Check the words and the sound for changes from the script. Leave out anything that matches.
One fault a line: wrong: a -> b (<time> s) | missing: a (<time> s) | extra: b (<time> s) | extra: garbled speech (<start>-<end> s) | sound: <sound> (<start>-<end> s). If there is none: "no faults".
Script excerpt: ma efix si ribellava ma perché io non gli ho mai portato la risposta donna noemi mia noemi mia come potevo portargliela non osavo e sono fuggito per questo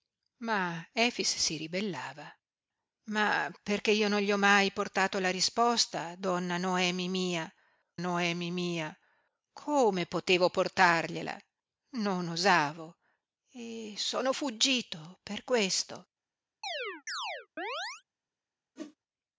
sound: chirp (16.6-18.0 s)
sound: whoosh (18.8-19.0 s)